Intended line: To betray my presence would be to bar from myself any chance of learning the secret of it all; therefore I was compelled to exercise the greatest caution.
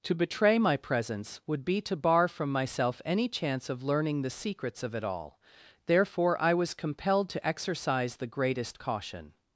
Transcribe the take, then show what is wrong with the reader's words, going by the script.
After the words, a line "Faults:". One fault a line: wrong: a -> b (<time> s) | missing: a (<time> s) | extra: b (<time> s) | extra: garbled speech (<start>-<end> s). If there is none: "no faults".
To betray my presence would be to bar from myself any chance of learning the secrets of it all; therefore I was compelled to exercise the greatest caution.
Faults:
wrong: secret -> secrets (4.3 s)